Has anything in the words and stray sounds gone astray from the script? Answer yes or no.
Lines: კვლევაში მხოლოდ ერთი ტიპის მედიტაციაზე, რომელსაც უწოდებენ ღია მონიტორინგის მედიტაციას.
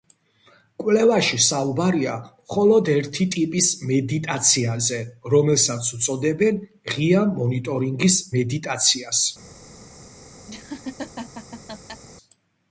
yes